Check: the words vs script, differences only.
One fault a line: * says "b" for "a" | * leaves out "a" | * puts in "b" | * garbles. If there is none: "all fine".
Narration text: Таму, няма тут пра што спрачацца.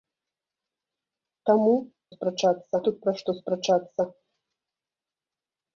* says "спрачацца" for "няма"